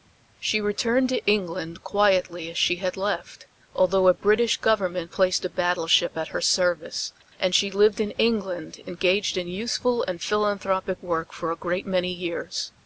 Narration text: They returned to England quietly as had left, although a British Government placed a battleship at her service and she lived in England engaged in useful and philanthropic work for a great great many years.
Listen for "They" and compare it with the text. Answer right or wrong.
wrong